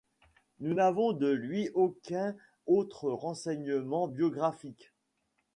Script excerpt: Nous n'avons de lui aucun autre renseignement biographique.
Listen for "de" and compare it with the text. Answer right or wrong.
right